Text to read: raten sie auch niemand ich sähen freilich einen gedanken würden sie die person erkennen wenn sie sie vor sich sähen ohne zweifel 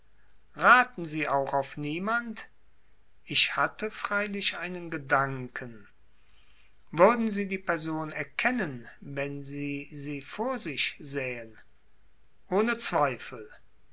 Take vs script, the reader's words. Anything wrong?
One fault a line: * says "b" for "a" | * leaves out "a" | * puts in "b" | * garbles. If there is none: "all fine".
* puts in "auf"
* says "hatte" for "sähen"